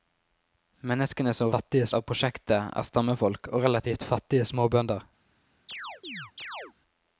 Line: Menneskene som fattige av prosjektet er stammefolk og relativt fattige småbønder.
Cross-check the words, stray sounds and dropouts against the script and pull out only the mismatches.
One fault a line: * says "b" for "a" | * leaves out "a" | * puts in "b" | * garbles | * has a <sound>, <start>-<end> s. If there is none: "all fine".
* has a chirp, 5.7-6.7 s